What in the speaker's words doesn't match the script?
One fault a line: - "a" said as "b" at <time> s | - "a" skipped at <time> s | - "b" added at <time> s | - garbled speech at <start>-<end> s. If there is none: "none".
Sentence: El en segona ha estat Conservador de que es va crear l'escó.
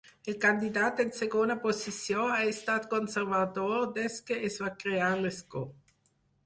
- "candidat" added at 0.4 s
- "posició" added at 1.6 s
- "de" said as "des" at 4.0 s